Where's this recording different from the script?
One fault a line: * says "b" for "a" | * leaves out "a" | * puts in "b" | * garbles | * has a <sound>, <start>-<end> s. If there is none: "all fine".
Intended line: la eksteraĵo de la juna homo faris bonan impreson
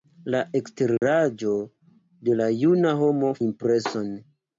* has a dropout, 1.0-1.0 s
* leaves out "faris bonan"